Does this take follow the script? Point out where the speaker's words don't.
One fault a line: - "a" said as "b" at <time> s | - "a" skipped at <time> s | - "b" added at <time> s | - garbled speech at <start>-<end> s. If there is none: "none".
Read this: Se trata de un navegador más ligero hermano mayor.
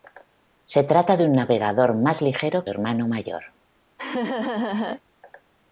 none